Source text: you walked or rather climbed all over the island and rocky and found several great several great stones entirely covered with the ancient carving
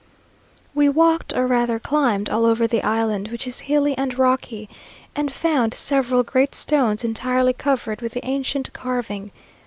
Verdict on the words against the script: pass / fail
fail